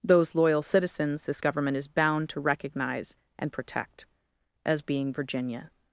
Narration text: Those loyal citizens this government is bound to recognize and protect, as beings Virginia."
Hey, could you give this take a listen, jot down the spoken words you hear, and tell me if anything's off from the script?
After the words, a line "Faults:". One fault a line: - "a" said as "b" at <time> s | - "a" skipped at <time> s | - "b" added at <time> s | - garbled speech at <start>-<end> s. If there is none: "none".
Those loyal citizens this government is bound to recognize and protect, as being Virginia."
Faults:
- "beings" said as "being" at 4.8 s